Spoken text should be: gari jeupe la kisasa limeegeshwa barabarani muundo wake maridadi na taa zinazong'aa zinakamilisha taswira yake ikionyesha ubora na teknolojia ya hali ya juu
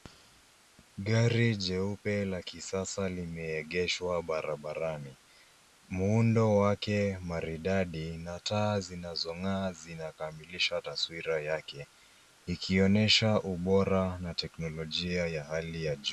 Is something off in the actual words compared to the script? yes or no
no